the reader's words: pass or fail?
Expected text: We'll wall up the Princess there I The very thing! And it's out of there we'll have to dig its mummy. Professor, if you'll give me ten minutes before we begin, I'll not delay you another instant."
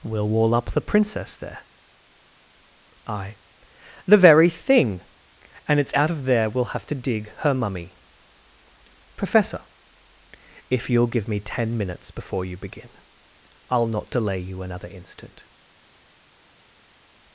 fail